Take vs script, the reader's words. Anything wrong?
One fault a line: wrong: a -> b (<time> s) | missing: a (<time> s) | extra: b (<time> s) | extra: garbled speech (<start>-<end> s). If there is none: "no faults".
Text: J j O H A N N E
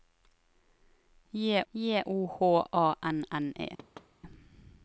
no faults